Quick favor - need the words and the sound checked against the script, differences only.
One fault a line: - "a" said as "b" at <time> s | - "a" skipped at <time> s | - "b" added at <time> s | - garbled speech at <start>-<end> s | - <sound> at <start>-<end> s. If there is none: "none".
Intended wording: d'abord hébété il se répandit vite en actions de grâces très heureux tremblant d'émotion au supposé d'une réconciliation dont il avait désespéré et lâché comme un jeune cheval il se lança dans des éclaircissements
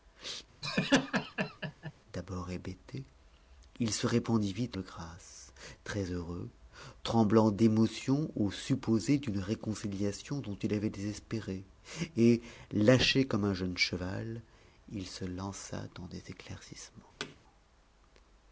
- laugh at 0.6-1.9 s
- "en actions" skipped at 4.8 s
- thud at 17.2-17.4 s